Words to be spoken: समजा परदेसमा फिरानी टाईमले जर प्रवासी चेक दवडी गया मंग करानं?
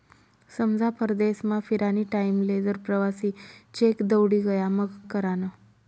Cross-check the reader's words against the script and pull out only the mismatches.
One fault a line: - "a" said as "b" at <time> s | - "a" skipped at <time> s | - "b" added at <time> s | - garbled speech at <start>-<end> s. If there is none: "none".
none